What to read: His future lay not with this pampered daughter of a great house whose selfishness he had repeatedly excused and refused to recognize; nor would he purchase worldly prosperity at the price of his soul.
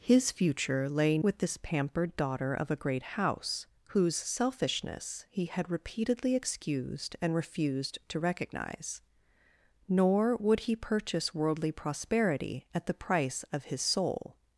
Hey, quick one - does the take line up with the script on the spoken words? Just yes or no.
no